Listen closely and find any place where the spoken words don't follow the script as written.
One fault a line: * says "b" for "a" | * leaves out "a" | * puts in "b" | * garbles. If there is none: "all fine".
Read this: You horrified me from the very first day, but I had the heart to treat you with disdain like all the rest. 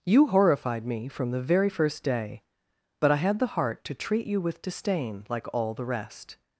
all fine